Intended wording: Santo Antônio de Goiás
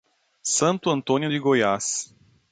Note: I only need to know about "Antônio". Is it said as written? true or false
true